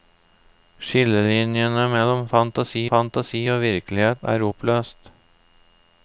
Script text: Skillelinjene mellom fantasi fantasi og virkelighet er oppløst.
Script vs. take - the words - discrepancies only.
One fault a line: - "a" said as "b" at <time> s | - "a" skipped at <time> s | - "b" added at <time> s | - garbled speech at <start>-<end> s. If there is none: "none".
none